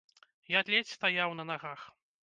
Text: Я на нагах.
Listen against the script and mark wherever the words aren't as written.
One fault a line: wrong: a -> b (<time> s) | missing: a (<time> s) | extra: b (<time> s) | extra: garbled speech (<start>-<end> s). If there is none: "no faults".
extra: ледзь стаяў (0.8 s)